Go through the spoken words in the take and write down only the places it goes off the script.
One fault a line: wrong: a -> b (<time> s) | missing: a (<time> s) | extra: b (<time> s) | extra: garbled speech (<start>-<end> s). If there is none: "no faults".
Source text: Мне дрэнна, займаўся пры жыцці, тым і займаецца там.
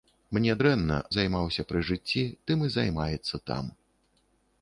no faults